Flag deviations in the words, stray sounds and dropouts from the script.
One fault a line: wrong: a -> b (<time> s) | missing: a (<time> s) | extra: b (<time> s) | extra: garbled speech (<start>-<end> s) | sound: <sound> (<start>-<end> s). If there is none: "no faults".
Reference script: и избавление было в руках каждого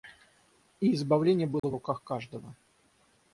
sound: dropout (1.6-1.6 s)